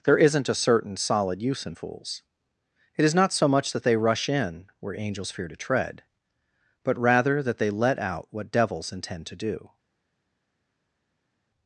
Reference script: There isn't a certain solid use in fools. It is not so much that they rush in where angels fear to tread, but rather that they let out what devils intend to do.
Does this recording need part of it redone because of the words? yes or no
no